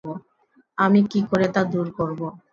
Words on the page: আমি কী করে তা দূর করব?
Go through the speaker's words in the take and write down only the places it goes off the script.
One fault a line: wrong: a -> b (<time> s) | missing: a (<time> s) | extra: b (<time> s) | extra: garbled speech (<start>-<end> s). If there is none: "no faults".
no faults